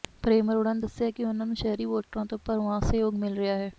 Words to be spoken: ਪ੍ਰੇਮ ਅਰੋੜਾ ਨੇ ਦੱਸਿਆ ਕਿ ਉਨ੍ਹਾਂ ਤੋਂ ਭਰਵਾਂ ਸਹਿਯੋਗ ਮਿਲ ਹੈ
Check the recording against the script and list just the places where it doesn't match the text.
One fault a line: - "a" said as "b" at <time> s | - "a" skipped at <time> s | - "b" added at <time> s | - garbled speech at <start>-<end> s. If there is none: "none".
- "ਨੂੰ ਸ਼ਹਿਰੀ ਵੋਟਰਾਂ" added at 1.5 s
- "ਰਿਹਾ" added at 3.4 s